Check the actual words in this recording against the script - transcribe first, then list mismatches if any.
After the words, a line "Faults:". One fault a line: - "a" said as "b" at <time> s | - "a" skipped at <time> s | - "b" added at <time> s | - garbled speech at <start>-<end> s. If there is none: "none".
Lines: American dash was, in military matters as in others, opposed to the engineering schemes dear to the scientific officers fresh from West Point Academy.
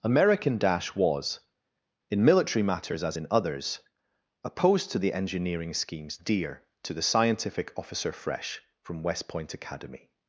American dash was, in military matters as in others, opposed to the engineering schemes dear to the scientific officer fresh from West Point Academy.
Faults:
- "officers" said as "officer" at 7.8 s